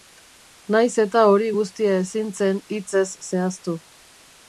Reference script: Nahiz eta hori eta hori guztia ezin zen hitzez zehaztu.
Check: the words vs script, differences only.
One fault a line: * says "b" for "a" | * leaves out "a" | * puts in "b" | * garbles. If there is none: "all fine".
* leaves out "eta hori"